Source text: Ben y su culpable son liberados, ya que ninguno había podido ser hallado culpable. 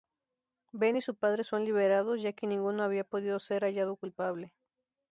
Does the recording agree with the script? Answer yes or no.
no